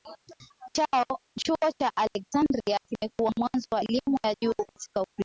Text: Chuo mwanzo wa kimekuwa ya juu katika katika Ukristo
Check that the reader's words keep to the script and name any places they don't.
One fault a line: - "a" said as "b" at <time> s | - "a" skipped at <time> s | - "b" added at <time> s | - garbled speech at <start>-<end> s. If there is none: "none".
- "cha Aleksandria kimekuwa" added at 1.8 s
- "kimekuwa" said as "elimu" at 3.8 s
- "katika" skipped at 5.0 s